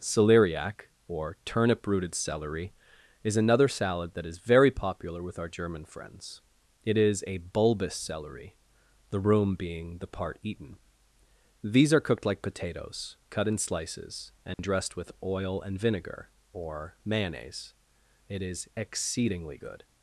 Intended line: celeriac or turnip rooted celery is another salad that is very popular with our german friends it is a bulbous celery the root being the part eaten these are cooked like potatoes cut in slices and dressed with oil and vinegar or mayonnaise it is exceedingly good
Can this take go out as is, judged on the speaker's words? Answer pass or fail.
fail